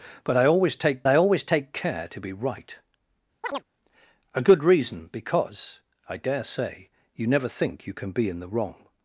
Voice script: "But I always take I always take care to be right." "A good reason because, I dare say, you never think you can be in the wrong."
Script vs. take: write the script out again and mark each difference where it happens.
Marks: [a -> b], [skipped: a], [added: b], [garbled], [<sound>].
"But I always take I always take care to be right." [chirp] "A good reason because, I dare say, you never think you can be in the wrong."